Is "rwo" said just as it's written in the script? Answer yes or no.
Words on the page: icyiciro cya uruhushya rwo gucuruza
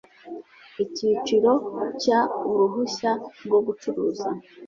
yes